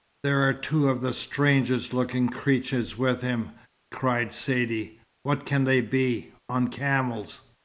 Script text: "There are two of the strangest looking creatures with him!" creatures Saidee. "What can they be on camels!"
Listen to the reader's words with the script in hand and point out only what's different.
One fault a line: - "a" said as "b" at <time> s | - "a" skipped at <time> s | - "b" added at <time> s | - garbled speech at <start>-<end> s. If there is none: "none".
- "creatures" said as "cried" at 3.9 s